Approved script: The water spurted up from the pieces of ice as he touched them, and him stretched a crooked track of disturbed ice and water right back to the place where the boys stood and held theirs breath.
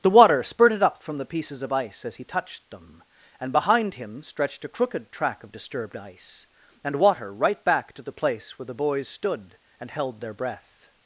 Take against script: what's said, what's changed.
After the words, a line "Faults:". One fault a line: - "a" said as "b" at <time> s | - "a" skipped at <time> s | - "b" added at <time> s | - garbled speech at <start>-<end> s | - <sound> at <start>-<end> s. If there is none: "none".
The water spurted up from the pieces of ice as he touched them, and behind him stretched a crooked track of disturbed ice and water right back to the place where the boys stood and held their breath.
Faults:
- "behind" added at 3.5 s
- "theirs" said as "their" at 10.2 s